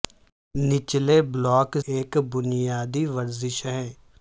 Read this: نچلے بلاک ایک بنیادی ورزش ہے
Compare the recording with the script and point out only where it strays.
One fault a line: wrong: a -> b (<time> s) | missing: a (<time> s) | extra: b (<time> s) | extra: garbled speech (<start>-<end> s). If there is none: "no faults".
no faults